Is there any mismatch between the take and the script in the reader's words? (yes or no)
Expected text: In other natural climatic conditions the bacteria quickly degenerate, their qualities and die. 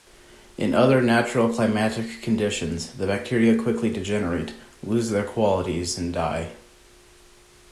yes